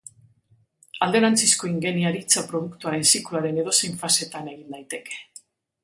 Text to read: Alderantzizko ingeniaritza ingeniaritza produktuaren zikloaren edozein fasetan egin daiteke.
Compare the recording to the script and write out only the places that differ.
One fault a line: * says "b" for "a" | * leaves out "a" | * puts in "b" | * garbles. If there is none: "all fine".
* leaves out "ingeniaritza"